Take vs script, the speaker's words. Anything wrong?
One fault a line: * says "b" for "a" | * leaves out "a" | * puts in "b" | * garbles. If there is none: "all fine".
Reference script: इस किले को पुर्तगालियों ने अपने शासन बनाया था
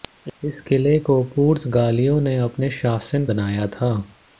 all fine